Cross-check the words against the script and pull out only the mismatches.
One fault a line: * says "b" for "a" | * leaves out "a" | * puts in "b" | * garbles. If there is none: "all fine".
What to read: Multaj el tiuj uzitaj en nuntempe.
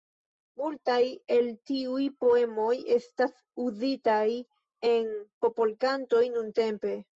* puts in "poemoj estas"
* puts in "popolkantoj"